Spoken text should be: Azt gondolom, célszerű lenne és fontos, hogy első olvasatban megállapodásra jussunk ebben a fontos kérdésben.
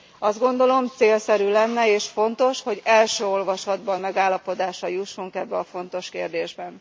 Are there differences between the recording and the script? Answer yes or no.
no